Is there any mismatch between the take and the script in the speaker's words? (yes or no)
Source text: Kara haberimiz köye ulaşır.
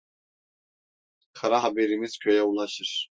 no